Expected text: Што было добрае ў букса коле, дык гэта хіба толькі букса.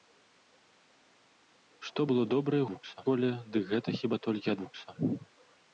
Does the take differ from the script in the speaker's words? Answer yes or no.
no